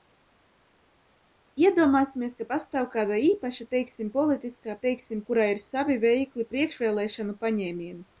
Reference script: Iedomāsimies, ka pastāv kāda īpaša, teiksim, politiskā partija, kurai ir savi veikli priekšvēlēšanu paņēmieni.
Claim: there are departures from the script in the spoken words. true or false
true